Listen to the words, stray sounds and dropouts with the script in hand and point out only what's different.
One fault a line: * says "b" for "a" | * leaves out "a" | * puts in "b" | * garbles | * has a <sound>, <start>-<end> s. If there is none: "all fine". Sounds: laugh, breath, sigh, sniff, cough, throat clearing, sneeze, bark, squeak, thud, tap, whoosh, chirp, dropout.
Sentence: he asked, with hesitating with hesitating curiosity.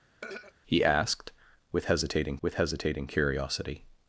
* has a throat clearing, 0.2-0.5 s